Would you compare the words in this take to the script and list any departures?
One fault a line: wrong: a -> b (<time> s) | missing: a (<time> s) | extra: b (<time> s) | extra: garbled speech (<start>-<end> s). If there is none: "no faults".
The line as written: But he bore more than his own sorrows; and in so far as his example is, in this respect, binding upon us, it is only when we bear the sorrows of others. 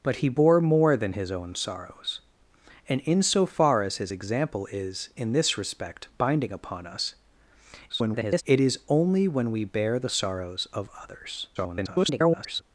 extra: garbled speech (7.9-8.4 s)
extra: garbled speech (11.5-12.6 s)